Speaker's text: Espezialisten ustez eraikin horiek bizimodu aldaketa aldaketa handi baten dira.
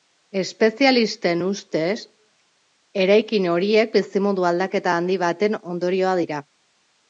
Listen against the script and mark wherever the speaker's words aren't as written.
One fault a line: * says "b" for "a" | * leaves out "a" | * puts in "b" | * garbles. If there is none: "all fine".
* leaves out "aldaketa"
* puts in "ondorioa"